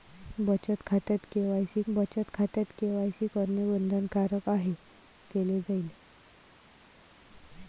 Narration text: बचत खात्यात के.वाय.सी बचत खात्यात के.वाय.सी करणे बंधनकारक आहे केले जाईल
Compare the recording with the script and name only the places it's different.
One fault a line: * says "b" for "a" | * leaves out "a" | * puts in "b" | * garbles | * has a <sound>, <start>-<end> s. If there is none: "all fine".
all fine